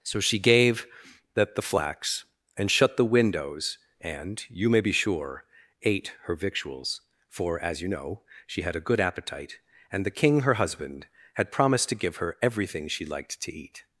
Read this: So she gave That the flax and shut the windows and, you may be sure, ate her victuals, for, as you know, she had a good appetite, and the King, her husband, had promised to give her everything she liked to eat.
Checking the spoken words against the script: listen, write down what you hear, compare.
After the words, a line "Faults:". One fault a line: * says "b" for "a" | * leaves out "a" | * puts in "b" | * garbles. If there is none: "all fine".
So she gave That the flax and shut the windows and, you may be sure, ate her victuals, for, as you know, she had a good appetite, and the King, her husband, had promised to give her everything she liked to eat.
Faults:
all fine